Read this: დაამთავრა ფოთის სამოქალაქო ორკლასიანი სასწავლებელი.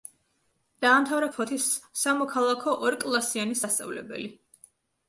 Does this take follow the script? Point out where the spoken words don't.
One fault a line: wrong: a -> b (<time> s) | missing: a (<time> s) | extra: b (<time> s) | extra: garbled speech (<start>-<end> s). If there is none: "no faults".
no faults